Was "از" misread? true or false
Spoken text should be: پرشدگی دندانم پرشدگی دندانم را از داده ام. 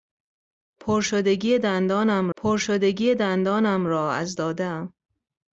false